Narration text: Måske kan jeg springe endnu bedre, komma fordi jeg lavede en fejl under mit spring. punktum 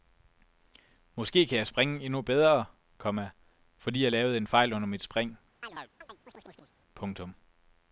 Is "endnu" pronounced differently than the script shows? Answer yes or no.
no